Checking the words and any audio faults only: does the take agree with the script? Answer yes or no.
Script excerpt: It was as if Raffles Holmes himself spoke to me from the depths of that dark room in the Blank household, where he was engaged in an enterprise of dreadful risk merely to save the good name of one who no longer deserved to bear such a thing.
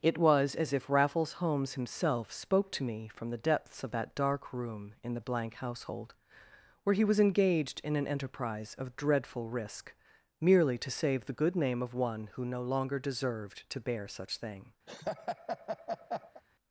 no